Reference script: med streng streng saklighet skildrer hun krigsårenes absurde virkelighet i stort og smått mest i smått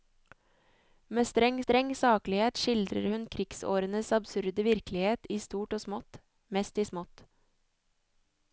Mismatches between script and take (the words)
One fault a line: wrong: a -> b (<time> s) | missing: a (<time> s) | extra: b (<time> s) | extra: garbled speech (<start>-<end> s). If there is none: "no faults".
no faults